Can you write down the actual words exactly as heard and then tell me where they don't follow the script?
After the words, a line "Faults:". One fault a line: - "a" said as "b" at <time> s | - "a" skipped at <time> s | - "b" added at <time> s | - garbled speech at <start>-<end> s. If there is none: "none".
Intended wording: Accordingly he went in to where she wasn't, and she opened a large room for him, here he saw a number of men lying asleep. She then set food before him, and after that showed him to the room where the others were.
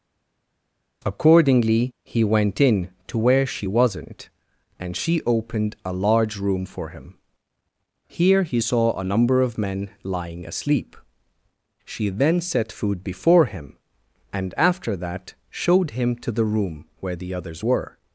Accordingly he went in to where she wasn't, and she opened a large room for him, here he saw a number of men lying asleep. She then set food before him, and after that showed him to the room where the others were.
Faults:
none